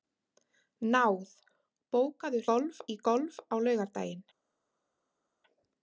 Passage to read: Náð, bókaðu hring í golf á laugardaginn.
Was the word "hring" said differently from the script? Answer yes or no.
yes